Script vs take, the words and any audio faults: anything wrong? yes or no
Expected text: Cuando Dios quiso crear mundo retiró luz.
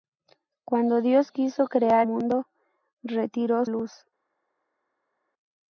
no